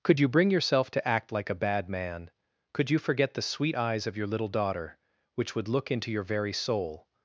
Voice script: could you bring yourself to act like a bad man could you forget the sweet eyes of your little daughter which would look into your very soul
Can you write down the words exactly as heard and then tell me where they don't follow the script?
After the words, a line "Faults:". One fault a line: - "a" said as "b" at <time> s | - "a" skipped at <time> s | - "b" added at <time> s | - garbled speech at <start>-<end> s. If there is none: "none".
could you bring yourself to act like a bad man could you forget the sweet eyes of your little daughter which would look into your very soul
Faults:
none